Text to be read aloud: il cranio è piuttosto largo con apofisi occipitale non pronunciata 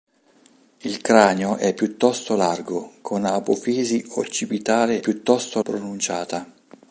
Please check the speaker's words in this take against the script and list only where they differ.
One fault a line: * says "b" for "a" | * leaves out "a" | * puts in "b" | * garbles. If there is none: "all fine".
* says "piuttosto" for "non"